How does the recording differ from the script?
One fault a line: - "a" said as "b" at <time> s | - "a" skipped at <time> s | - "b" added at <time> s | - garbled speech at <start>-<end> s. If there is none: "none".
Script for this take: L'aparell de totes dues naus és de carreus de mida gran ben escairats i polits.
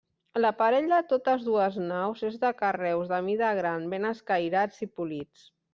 none